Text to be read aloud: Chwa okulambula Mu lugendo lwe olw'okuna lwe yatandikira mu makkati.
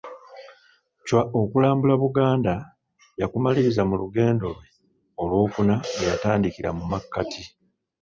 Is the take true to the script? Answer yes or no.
no